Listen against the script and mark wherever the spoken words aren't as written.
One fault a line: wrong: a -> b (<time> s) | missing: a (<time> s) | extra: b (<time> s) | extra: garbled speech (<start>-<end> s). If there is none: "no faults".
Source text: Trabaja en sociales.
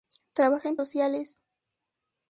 no faults